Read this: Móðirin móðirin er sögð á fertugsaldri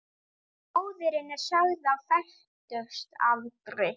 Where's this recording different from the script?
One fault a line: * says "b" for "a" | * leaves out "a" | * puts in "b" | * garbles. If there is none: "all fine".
* leaves out "móðirin"